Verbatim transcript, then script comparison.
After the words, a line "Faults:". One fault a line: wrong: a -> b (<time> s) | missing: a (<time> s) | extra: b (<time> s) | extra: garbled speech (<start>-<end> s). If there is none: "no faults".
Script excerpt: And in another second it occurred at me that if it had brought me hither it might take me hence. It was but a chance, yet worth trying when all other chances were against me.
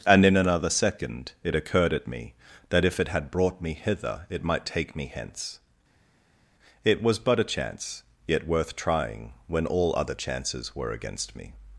And in another second it occurred at me that if it had brought me hither it might take me hence. It was but a chance, yet worth trying when all other chances were against me.
Faults:
no faults